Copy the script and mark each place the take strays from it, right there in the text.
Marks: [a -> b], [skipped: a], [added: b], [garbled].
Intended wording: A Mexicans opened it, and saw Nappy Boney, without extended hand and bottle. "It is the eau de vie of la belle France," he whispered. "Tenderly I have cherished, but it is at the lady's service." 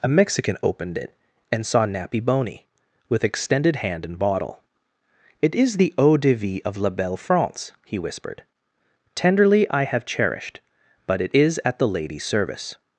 A [Mexicans -> Mexican] opened it, and saw Nappy Boney, [without -> with] extended hand and bottle. "It is the eau de vie of la belle France," he whispered. "Tenderly I have cherished, but it is at the lady's service."